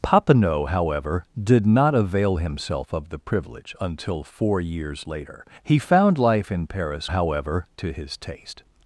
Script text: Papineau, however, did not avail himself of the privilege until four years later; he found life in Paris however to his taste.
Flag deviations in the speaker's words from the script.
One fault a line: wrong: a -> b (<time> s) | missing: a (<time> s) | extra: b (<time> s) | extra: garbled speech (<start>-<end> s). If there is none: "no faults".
no faults